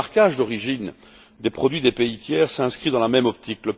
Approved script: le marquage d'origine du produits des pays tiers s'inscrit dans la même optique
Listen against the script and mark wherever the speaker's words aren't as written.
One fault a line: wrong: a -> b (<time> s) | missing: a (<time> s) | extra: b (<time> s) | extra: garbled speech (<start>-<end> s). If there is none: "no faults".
wrong: du -> des (1.4 s)